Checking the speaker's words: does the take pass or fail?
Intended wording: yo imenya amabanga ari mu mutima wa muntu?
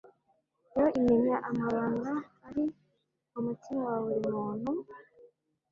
fail